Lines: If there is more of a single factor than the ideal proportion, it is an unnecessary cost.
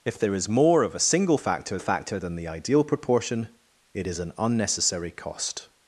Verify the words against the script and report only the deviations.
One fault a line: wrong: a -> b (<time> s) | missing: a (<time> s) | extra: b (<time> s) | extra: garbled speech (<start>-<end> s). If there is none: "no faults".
extra: factor (1.8 s)